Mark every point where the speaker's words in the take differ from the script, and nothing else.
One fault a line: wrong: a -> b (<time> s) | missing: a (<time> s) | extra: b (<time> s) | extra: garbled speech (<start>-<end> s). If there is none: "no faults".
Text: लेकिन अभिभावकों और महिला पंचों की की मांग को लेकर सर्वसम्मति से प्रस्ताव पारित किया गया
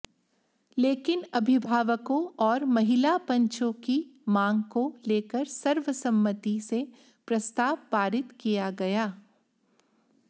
missing: की (4.0 s)